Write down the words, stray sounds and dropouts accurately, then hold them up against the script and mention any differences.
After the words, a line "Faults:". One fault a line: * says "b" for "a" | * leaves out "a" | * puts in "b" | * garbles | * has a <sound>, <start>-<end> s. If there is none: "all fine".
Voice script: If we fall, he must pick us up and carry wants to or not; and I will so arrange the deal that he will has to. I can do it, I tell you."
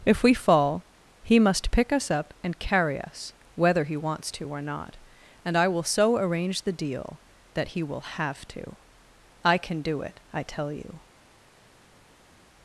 If we fall, he must pick us up and carry us, whether he wants to or not; and I will so arrange the deal that he will have to. I can do it, I tell you."
Faults:
* puts in "us whether he"
* says "have" for "has"